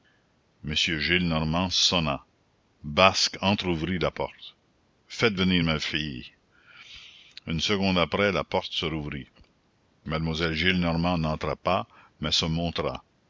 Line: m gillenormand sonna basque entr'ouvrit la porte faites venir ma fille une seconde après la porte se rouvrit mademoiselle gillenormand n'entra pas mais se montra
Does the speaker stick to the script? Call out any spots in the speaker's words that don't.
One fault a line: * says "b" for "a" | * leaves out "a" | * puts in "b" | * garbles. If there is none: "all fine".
all fine